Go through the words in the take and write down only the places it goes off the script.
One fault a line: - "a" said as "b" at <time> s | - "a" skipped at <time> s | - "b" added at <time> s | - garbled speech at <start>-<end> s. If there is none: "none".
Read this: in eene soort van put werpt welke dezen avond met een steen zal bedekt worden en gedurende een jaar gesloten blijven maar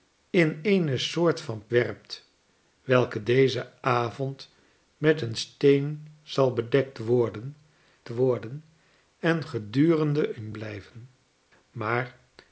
- "put" skipped at 1.6 s
- "worden" added at 8.1 s
- "jaar gesloten" skipped at 10.5 s